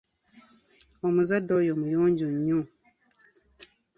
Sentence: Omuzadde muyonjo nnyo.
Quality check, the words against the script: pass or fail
fail